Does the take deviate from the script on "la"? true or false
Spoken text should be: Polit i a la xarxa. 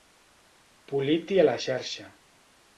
false